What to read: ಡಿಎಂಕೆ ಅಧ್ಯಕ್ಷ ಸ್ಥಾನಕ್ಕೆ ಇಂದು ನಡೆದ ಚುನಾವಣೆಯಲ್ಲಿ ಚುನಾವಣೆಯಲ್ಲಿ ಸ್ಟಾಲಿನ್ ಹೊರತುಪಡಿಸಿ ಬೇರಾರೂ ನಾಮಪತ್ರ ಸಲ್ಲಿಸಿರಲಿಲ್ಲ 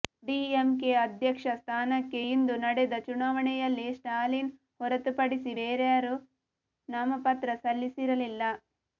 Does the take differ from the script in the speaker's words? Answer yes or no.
yes